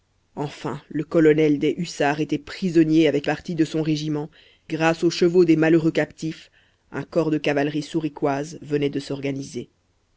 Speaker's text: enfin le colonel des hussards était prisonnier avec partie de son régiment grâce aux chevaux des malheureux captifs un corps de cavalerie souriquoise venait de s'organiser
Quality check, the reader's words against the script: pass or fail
pass